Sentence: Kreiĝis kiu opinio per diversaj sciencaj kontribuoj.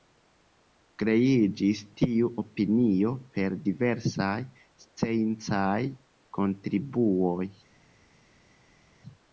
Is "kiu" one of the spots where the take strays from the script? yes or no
yes